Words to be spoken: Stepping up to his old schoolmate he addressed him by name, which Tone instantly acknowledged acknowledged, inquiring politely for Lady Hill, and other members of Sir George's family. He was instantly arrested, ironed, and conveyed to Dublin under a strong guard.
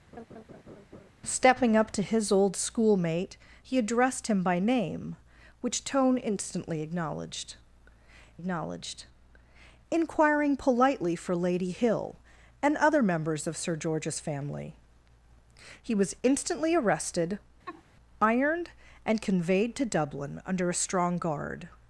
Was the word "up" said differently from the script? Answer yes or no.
no